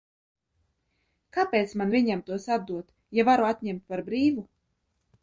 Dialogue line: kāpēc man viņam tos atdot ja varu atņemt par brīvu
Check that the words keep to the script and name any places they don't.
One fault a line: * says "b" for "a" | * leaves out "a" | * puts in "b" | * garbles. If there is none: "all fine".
all fine